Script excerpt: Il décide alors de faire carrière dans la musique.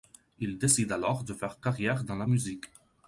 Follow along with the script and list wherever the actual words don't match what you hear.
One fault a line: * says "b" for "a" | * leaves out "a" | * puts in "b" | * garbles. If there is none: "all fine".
all fine